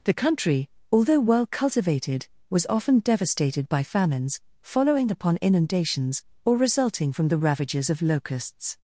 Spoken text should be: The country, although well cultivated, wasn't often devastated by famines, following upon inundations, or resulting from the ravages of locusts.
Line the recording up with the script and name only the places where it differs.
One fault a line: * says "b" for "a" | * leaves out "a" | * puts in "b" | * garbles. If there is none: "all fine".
* says "was" for "wasn't"